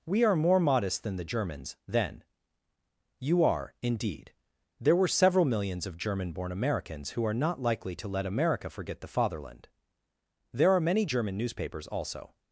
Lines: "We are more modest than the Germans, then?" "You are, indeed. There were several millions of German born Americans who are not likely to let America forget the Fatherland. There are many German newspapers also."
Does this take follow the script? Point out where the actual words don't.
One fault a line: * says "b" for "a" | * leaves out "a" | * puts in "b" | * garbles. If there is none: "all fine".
all fine